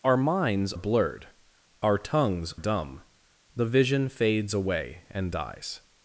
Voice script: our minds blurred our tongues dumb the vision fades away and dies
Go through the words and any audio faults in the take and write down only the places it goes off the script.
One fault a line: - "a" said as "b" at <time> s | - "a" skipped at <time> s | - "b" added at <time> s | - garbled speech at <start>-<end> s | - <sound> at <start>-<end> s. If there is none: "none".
none